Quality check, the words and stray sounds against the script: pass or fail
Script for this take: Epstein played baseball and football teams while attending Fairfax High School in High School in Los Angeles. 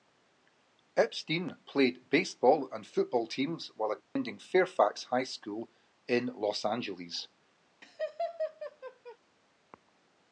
fail